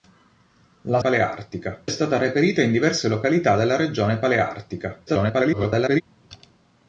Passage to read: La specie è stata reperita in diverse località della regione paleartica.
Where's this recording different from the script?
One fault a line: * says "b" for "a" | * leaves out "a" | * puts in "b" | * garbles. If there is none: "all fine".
* says "paleartica" for "specie"
* garbles